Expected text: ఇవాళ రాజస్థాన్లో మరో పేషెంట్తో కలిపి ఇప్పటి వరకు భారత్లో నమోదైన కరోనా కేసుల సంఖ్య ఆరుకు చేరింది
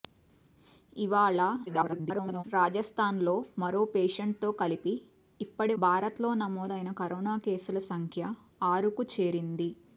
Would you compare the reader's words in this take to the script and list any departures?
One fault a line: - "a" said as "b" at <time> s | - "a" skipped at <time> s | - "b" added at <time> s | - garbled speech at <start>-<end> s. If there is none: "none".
- garbled speech at 1.7-2.4 s
- "వరకు" skipped at 5.8 s